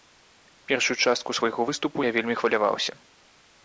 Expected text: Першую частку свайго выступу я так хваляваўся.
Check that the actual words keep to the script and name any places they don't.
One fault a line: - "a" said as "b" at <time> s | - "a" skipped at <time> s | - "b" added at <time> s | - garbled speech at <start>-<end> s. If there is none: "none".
- "так" said as "вельмі" at 2.2 s